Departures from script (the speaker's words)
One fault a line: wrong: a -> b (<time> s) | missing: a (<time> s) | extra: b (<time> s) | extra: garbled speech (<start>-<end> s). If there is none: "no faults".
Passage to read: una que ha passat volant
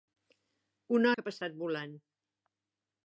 no faults